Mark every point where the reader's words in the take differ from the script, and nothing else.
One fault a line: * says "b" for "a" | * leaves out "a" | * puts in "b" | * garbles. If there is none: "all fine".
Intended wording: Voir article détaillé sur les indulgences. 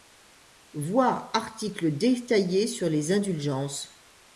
all fine